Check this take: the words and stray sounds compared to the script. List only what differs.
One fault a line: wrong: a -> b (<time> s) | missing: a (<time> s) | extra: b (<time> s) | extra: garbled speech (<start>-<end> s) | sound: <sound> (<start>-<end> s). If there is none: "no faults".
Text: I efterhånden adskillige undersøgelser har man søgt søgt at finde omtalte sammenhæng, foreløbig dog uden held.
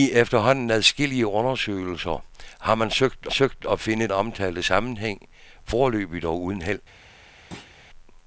sound: thud (7.5-7.7 s)